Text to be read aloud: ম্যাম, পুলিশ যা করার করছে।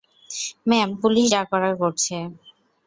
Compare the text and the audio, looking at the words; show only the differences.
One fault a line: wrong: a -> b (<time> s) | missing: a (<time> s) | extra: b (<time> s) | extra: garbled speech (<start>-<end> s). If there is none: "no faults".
no faults